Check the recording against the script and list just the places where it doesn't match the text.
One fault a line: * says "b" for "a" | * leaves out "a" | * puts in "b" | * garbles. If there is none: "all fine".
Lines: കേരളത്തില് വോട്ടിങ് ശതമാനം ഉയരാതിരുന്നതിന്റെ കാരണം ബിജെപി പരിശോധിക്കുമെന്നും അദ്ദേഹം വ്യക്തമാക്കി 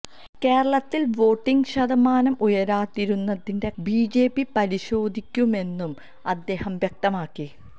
* leaves out "കാരണം"